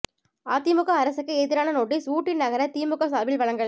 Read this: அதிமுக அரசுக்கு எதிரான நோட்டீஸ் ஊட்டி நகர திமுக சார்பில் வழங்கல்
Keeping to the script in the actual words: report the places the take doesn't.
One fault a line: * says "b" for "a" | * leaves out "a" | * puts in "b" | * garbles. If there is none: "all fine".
all fine